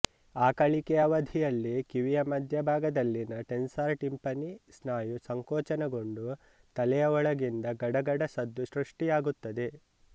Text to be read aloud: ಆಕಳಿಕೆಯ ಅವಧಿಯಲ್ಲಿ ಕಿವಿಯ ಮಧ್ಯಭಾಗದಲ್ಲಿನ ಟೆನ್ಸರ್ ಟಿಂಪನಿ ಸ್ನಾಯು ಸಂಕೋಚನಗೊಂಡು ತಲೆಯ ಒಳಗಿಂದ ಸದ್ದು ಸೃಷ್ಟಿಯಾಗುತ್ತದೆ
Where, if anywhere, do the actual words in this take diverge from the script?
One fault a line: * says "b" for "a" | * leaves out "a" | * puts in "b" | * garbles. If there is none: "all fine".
* puts in "ಗಡಗಡ"